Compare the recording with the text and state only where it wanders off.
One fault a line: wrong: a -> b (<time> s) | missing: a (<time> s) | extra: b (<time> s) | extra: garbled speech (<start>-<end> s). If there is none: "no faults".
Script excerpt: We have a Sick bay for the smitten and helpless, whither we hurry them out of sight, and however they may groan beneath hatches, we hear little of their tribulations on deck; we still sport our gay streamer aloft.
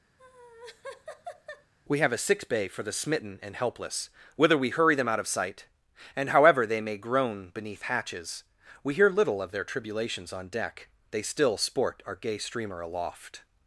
wrong: we -> they (11.1 s)